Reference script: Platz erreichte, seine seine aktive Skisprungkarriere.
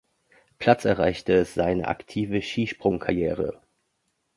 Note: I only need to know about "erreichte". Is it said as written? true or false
true